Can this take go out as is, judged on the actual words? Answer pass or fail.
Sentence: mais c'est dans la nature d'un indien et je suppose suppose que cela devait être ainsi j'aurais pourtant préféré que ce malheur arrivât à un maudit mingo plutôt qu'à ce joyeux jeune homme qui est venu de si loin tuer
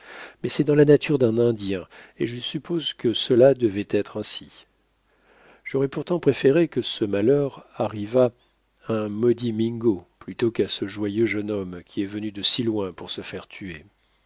fail